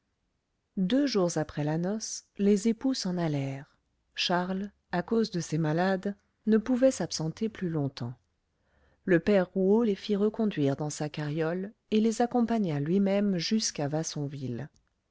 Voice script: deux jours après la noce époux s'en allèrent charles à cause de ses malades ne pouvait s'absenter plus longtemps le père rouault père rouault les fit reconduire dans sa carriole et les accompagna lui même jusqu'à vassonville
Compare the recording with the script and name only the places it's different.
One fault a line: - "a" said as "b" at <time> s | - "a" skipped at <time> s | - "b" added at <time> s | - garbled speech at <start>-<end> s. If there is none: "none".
- "les" added at 2.4 s
- "père rouault" skipped at 9.8 s